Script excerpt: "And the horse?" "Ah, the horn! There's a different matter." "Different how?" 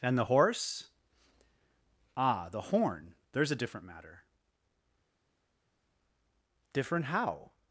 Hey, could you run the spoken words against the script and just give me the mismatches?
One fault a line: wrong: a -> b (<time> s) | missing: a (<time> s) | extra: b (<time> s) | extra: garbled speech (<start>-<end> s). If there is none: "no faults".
no faults